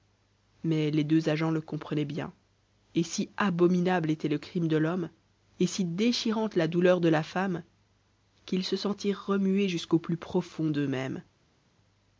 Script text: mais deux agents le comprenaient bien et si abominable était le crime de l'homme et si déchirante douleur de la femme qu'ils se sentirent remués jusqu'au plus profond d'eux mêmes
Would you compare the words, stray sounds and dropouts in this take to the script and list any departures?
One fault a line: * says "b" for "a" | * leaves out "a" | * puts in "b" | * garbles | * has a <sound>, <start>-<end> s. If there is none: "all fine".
* puts in "les"
* puts in "la"